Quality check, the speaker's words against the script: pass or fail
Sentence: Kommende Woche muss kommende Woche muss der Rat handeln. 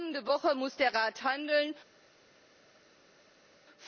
fail